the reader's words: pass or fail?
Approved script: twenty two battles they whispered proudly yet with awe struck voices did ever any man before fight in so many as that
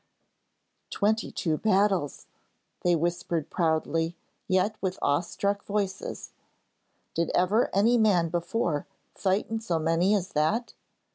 pass